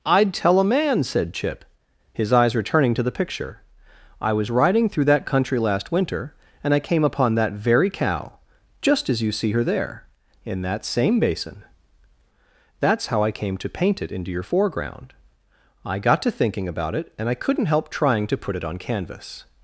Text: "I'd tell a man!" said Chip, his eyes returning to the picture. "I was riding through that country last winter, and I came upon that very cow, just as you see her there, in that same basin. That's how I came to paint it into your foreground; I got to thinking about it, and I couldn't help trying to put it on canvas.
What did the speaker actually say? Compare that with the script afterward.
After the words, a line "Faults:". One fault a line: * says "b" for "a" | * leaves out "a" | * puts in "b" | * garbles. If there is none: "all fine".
"I'd tell a man!" said Chip, his eyes returning to the picture. "I was riding through that country last winter, and I came upon that very cow, just as you see her there, in that same basin. That's how I came to paint it into your foreground; I got to thinking about it, and I couldn't help trying to put it on canvas.
Faults:
all fine